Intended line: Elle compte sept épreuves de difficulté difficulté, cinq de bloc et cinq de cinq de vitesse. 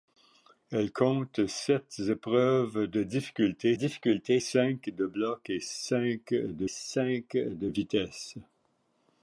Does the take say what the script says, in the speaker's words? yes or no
yes